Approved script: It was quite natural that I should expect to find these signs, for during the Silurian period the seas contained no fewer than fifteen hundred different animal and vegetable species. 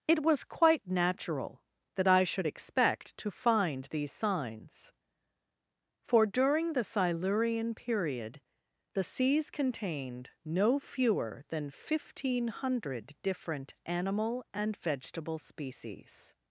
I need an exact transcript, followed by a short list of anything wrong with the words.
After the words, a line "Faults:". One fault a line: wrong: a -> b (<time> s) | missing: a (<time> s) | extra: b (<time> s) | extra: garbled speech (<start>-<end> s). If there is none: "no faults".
It was quite natural that I should expect to find these signs, for during the Silurian period the seas contained no fewer than fifteen hundred different animal and vegetable species.
Faults:
no faults